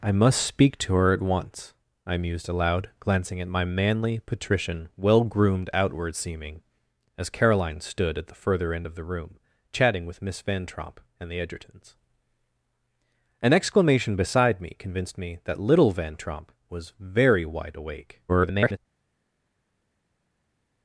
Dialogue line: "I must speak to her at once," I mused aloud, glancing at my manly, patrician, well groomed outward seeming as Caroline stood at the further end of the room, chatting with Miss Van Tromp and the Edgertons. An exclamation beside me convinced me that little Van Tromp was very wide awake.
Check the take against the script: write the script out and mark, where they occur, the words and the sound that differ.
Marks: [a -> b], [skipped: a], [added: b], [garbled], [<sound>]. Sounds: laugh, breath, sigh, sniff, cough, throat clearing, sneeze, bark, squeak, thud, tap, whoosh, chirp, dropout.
"I must speak to her at once," I mused aloud, glancing at my manly, patrician, well groomed outward seeming as Caroline stood at the further end of the room, chatting with Miss Van Tromp and the Edgertons. An exclamation beside me convinced me that little Van Tromp was very wide awake. [garbled]